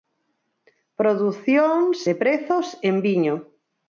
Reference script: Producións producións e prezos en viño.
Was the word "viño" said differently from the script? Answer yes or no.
no